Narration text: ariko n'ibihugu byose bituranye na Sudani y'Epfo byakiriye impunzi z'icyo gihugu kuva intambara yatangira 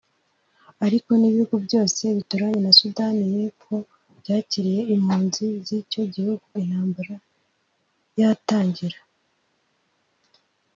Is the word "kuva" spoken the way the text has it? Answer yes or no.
no